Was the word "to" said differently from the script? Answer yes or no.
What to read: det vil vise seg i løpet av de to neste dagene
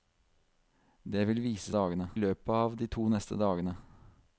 no